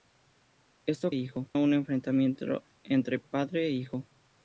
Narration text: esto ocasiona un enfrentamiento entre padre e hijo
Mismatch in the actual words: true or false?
true